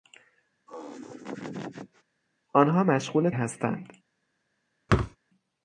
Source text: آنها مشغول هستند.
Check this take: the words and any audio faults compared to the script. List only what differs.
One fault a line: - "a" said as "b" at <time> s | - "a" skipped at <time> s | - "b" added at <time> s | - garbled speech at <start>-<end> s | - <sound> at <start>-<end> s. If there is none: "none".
- laugh at 0.7-2.0 s
- thud at 4.9-5.2 s